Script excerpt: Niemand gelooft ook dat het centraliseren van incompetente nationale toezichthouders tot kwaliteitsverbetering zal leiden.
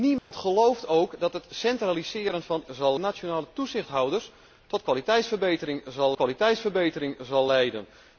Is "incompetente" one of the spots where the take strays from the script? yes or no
yes